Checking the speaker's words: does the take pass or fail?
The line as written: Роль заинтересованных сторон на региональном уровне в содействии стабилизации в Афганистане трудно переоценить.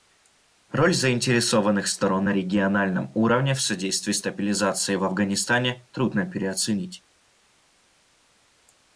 pass